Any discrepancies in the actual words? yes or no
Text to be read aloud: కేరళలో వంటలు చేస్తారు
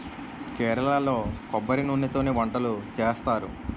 yes